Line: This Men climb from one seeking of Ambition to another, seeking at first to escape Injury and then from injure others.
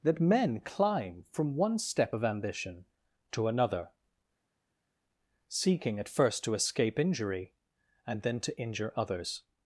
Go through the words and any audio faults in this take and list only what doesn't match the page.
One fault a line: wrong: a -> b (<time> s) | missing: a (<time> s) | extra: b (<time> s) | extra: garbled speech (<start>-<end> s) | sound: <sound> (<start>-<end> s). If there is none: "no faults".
wrong: This -> That (0.0 s)
wrong: seeking -> step (1.8 s)
wrong: from -> to (8.4 s)